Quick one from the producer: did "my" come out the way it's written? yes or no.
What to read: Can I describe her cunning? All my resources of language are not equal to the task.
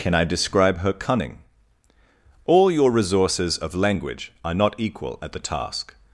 no